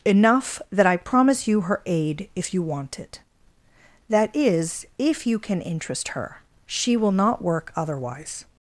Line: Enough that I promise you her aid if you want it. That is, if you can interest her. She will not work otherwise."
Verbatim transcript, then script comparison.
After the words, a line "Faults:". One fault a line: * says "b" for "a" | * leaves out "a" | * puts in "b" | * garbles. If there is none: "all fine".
Enough that I promise you her aid if you want it. That is, if you can interest her. She will not work otherwise."
Faults:
all fine